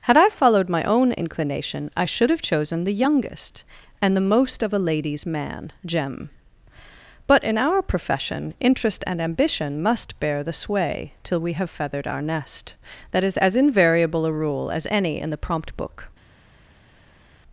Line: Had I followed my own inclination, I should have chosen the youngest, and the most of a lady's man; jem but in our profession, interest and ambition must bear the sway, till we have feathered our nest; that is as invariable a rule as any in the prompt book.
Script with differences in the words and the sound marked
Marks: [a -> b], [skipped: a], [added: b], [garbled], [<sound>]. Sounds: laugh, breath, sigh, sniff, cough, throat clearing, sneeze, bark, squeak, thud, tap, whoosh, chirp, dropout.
Had I followed my own inclination, I should have chosen the youngest, and the most of a lady's man; jem but in our profession, interest and ambition must bear the sway, till we have feathered our nest; that is as invariable a rule as any in the prompt book.